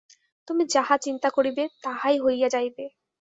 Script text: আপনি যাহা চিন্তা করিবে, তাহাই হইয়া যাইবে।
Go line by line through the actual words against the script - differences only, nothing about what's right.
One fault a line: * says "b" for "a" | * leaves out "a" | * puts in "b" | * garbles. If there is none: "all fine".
* says "তুমি" for "আপনি"